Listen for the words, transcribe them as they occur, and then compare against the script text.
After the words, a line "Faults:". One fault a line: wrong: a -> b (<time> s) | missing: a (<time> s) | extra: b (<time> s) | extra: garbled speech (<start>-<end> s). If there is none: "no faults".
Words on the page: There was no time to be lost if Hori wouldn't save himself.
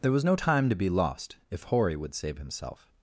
There was no time to be lost if Hori would save himself.
Faults:
wrong: wouldn't -> would (2.0 s)